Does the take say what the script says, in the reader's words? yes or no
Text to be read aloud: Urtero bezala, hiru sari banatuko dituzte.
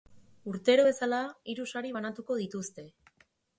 yes